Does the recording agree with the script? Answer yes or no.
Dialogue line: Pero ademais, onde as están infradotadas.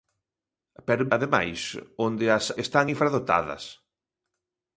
yes